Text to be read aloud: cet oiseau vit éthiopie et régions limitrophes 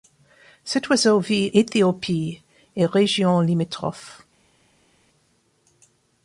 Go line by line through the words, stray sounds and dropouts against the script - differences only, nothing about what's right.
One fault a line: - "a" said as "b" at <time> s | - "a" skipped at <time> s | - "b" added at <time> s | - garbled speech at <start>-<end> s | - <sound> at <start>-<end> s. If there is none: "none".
none